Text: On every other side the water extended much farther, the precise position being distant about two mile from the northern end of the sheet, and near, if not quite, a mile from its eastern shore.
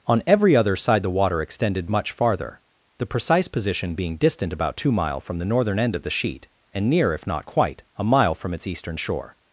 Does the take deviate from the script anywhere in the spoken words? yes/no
no